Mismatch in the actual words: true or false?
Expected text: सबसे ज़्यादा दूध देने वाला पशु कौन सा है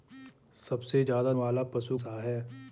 true